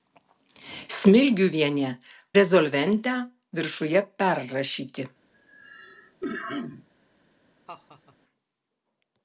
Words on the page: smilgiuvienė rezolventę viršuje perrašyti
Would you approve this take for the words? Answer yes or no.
yes